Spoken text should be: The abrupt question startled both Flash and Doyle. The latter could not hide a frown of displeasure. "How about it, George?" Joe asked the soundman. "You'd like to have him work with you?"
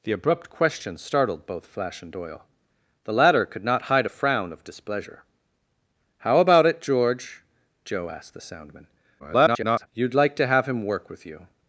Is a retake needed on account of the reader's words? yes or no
yes